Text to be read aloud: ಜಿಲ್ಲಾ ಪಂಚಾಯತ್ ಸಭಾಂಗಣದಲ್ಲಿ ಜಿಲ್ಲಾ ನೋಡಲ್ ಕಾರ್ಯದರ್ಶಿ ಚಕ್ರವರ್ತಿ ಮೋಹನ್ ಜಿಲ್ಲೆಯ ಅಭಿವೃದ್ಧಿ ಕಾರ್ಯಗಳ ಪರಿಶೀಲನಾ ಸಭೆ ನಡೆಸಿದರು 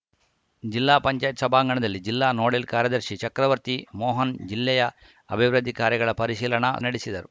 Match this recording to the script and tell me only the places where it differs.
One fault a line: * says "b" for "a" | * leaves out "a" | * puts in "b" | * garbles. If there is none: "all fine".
* leaves out "ಸಭೆ"